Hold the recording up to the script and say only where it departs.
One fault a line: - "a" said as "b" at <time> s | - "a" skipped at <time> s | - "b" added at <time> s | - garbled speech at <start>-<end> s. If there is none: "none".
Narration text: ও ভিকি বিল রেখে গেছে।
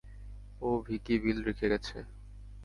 none